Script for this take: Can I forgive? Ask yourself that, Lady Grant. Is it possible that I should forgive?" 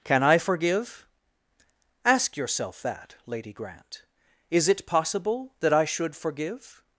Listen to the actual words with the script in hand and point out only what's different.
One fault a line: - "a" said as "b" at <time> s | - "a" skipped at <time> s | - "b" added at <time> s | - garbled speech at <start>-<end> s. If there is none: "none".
none